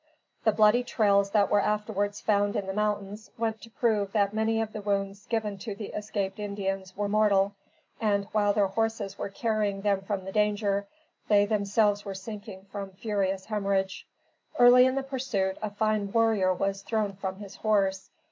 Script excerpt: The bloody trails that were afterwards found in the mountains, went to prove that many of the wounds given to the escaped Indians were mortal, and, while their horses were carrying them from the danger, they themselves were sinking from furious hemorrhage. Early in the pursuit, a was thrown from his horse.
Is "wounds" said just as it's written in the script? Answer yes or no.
yes